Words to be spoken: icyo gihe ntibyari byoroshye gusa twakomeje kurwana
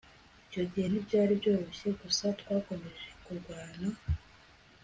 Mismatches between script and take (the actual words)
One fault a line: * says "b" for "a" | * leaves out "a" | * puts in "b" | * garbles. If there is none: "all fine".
all fine